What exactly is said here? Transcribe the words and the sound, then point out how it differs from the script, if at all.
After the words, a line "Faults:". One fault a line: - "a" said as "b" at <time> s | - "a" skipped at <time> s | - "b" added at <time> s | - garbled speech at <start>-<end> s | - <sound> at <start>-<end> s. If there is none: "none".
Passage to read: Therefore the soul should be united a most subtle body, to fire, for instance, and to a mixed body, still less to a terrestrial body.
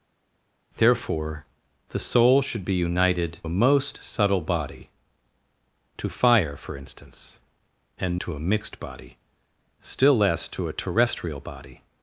Therefore the soul should be united a most subtle body, to fire, for instance, and to a mixed body, still less to a terrestrial body.
Faults:
none